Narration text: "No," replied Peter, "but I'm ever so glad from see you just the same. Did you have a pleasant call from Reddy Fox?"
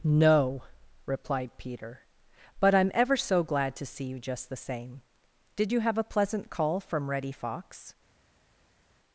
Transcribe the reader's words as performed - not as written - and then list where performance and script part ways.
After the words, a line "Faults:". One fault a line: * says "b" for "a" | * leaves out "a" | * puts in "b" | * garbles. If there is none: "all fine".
"No," replied Peter, "but I'm ever so glad to see you just the same. Did you have a pleasant call from Reddy Fox?"
Faults:
* says "to" for "from"